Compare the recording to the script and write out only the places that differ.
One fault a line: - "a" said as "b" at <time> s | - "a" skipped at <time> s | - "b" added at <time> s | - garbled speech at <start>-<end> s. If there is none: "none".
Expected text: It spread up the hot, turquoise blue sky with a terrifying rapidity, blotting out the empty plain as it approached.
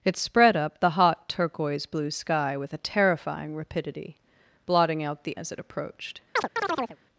- "empty plain" skipped at 5.4 s